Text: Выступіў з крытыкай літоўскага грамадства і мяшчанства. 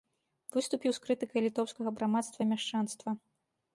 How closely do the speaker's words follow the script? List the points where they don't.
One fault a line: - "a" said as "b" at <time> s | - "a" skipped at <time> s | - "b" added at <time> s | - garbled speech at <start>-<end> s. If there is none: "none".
none